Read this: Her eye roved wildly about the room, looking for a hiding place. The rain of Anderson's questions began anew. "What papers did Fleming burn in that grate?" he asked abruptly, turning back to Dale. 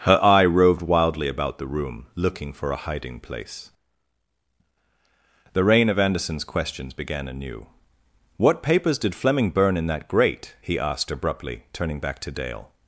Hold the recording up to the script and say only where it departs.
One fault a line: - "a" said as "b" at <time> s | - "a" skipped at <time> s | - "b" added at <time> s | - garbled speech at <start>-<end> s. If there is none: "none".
none